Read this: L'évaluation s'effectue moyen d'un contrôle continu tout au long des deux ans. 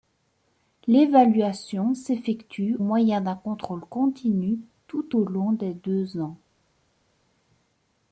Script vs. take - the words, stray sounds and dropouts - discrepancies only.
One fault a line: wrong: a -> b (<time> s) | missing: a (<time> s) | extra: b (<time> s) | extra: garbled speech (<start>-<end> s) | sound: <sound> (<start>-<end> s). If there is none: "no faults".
no faults